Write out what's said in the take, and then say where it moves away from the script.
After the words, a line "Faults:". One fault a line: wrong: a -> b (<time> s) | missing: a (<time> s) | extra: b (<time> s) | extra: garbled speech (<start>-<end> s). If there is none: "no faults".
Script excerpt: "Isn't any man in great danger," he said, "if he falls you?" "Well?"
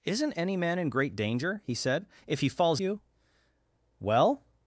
"Isn't any man in great danger," he said, "if he falls you?" "Well?"
Faults:
no faults